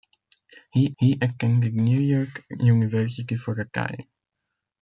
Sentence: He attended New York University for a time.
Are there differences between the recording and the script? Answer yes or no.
yes